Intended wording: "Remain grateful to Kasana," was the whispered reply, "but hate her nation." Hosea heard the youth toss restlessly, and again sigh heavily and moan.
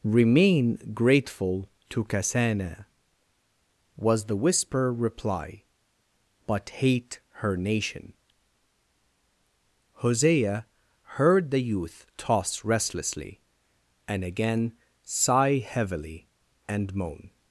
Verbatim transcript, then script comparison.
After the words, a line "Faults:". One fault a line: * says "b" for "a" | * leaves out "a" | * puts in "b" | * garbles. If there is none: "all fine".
"Remain grateful to Kasana," was the whisper reply, "but hate her nation." Hosea heard the youth toss restlessly, and again sigh heavily and moan.
Faults:
* says "whisper" for "whispered"